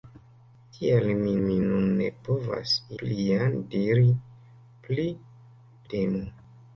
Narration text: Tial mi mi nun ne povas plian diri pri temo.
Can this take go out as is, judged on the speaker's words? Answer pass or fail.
pass